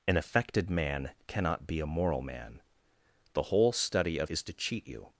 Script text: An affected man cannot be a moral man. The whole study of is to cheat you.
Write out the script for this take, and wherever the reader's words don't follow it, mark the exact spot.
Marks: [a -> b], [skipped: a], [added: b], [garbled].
An affected man cannot be a moral man. The whole study of is to cheat you.